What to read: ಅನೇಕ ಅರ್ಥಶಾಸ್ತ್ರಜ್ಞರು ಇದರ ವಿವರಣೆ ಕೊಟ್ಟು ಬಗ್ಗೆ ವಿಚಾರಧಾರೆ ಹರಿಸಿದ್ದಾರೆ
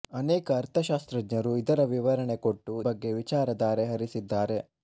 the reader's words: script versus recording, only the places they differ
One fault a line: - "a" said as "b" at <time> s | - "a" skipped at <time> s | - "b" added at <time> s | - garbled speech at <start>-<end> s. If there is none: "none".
none